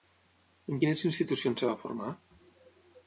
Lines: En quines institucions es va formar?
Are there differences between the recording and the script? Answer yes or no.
no